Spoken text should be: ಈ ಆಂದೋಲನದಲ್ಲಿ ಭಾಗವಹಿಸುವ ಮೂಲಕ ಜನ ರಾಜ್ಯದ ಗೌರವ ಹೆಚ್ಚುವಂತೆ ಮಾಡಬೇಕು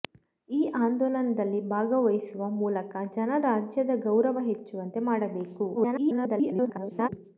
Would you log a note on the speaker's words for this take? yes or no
yes